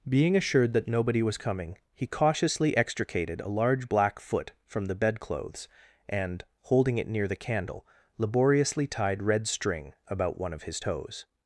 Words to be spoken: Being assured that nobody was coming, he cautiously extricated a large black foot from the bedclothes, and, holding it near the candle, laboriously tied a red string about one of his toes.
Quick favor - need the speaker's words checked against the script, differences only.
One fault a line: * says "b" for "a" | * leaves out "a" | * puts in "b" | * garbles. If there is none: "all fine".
* leaves out "a"